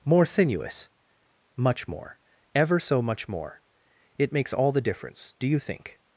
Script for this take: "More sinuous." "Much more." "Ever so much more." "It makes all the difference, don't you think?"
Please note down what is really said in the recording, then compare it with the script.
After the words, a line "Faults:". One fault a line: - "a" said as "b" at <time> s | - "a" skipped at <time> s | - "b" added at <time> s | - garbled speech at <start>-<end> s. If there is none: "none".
"More sinuous." "Much more." "Ever so much more." "It makes all the difference, do you think?"
Faults:
- "don't" said as "do" at 5.4 s